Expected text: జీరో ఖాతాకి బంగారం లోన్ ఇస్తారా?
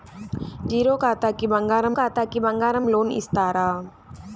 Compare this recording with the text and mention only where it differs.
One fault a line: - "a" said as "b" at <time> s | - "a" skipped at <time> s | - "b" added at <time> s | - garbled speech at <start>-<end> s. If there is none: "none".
- "ఖాతాకి బంగారం" added at 1.9 s